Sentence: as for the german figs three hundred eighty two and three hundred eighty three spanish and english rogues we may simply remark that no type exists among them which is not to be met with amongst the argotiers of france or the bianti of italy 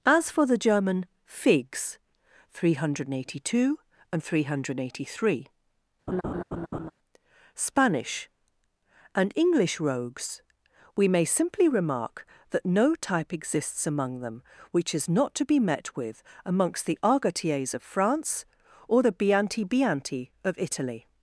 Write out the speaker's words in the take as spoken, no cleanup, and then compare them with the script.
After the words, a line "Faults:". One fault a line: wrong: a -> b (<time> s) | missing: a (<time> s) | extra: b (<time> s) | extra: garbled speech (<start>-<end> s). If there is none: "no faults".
as for the german figs three hundred eighty two and three hundred eighty three spanish and english rogues we may simply remark that no type exists among them which is not to be met with amongst the argotiers of france or the bianti bianti of italy
Faults:
extra: bianti (19.6 s)